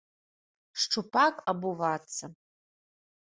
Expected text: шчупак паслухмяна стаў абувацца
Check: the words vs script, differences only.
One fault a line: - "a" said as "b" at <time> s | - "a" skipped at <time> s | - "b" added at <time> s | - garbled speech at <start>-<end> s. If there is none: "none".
- "паслухмяна стаў" skipped at 1.4 s